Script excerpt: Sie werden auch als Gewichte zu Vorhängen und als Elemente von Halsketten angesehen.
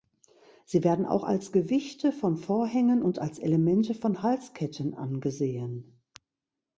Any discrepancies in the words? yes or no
yes